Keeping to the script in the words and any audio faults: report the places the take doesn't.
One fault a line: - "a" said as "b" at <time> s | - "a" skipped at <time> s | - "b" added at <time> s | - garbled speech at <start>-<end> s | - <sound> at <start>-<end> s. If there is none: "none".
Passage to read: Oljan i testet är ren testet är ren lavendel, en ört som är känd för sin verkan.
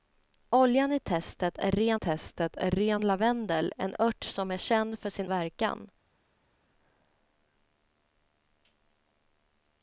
none